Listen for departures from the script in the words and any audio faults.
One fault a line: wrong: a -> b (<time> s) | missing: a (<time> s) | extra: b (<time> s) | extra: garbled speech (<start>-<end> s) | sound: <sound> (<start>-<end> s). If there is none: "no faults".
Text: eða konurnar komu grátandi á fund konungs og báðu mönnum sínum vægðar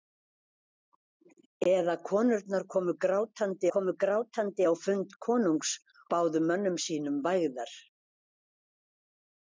extra: komu grátandi (3.8 s)
missing: og (5.8 s)